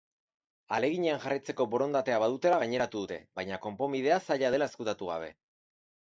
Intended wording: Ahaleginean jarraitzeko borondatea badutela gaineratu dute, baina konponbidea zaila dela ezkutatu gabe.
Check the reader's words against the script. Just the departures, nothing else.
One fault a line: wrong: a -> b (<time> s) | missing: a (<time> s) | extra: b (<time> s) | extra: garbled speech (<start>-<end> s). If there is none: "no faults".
no faults